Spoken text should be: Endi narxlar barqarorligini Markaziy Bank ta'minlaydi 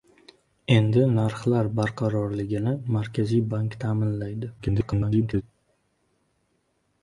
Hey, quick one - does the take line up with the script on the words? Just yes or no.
no